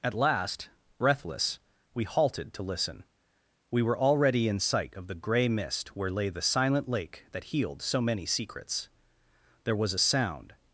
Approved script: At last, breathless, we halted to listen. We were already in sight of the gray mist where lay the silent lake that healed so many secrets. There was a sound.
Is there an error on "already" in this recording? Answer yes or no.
no